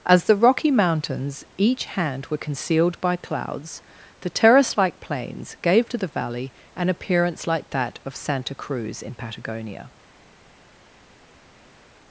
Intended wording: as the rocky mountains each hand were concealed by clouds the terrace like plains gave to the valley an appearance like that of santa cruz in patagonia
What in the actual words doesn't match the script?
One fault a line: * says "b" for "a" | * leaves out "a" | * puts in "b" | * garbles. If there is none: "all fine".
all fine